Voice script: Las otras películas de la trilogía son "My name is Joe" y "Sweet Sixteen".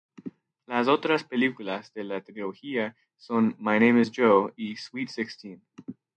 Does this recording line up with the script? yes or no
yes